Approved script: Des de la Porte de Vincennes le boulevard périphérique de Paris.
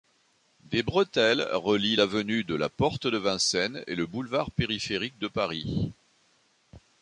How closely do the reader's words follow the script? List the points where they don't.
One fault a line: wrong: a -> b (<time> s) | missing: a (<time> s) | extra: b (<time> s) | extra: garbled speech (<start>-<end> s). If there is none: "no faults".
extra: bretelles relient l'avenue (0.8 s)
extra: et (3.9 s)